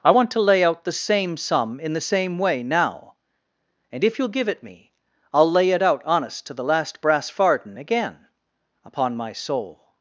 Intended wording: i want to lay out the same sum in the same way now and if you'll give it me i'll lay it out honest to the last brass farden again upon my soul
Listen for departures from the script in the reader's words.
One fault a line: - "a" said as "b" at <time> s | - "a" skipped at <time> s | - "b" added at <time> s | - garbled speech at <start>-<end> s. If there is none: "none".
none